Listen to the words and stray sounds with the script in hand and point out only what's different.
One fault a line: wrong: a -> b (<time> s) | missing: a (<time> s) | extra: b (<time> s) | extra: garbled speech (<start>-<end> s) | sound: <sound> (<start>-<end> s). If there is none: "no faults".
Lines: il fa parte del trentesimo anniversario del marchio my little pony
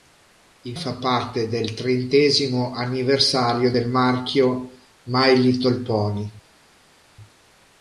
no faults